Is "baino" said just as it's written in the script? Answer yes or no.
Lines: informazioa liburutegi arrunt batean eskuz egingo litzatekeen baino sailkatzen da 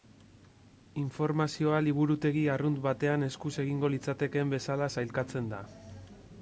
no